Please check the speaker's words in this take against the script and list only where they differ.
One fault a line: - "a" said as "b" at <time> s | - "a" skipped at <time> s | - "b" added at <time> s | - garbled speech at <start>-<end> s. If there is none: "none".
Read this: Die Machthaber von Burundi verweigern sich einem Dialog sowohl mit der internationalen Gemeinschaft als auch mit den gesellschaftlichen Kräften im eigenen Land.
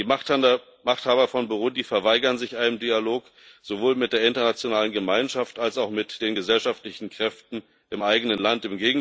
none